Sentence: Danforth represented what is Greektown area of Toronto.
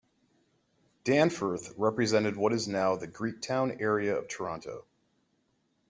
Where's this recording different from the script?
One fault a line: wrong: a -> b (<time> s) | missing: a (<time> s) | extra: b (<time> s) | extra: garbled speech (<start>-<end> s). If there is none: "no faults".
extra: now the (2.7 s)